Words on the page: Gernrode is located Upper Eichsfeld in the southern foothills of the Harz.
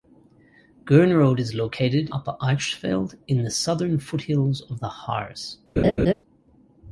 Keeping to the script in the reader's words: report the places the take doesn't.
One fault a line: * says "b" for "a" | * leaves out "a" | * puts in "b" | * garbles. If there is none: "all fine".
all fine